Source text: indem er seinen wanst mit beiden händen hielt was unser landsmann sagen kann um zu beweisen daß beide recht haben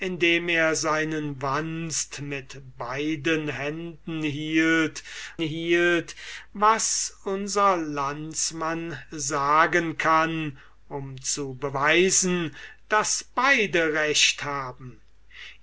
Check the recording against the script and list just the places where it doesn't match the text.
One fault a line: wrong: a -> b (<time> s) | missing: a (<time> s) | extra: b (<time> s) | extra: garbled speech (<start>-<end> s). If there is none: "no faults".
extra: hielt (5.4 s)